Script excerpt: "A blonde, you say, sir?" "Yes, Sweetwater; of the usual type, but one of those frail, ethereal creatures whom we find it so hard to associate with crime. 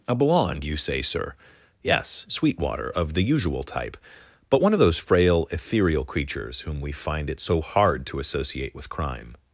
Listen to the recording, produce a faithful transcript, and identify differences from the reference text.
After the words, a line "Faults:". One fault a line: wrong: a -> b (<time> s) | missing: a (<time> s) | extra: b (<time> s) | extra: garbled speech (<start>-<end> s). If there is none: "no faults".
"A blonde, you say, sir?" "Yes, Sweetwater; of the usual type, but one of those frail, ethereal creatures whom we find it so hard to associate with crime.
Faults:
no faults